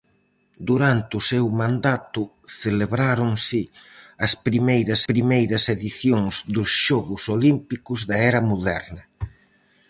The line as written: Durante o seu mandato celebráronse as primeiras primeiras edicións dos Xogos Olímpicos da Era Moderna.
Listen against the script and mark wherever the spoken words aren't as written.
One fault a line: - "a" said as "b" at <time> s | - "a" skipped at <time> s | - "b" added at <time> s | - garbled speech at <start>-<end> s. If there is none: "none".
none